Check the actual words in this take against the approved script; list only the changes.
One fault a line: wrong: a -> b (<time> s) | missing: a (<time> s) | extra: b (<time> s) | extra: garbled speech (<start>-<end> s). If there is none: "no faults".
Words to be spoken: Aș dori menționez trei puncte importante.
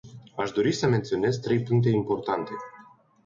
extra: să (0.7 s)